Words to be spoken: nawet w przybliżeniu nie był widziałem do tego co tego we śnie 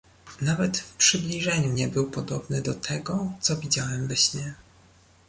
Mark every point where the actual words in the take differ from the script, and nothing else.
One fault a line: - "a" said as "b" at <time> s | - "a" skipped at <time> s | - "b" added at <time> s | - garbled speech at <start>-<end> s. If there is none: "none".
- "widziałem" said as "podobny" at 2.1 s
- "tego" said as "widziałem" at 3.6 s